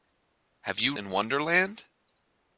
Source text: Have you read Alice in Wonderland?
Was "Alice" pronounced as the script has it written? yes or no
no